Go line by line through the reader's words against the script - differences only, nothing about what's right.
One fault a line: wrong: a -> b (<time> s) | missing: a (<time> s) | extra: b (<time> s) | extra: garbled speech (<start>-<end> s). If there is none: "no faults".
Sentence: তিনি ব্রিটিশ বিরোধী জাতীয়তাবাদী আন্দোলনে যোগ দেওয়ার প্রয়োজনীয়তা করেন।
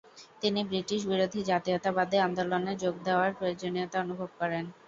extra: অনুভব (4.0 s)